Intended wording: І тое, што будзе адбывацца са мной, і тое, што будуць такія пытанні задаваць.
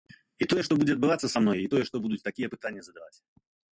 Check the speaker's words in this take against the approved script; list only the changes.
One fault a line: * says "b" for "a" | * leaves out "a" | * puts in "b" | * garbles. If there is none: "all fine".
all fine